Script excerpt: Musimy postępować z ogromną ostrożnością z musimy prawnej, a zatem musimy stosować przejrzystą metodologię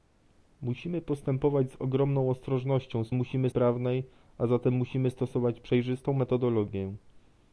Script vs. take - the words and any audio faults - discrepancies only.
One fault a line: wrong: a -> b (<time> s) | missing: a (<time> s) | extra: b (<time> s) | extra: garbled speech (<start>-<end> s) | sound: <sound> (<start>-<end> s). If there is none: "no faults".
no faults